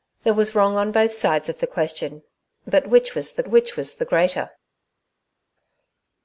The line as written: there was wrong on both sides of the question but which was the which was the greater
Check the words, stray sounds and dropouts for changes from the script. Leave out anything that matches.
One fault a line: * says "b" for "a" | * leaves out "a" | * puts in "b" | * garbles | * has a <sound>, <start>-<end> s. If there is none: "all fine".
all fine